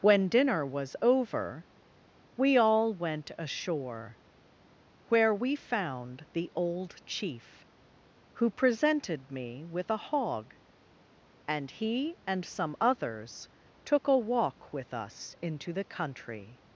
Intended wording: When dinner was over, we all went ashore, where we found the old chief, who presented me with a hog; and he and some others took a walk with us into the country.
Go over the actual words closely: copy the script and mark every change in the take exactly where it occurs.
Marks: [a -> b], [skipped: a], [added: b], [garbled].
When dinner was over, we all went ashore, where we found the old chief, who presented me with a hog; and he and some others took a walk with us into the country.